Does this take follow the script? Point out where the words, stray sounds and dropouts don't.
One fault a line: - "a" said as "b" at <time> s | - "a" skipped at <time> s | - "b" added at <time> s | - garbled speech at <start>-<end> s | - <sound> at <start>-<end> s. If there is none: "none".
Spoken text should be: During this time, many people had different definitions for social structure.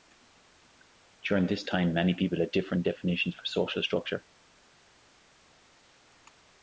none